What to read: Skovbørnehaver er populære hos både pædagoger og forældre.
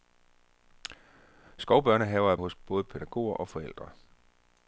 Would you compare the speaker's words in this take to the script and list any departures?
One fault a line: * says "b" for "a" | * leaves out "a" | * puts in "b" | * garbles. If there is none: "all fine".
* leaves out "populære"